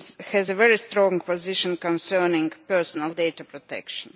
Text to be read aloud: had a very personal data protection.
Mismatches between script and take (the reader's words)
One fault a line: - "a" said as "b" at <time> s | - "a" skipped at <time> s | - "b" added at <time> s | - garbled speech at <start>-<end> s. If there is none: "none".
- "had" said as "has" at 0.3 s
- "strong position concerning" added at 0.8 s